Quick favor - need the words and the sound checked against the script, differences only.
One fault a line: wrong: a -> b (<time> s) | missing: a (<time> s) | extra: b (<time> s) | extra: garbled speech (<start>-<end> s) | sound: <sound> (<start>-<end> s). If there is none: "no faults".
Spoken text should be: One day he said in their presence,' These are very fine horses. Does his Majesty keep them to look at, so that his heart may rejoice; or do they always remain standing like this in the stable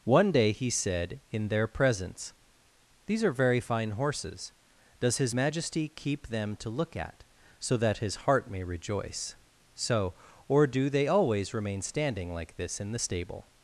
extra: so (9.7 s)